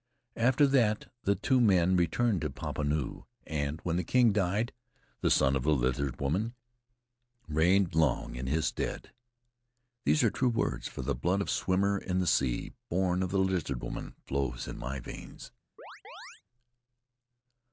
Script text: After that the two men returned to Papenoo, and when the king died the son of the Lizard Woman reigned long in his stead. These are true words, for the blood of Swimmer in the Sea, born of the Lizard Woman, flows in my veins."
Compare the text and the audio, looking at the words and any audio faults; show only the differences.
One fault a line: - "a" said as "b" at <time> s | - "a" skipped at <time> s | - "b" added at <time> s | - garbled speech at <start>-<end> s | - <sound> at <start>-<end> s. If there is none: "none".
- chirp at 15.8-16.4 s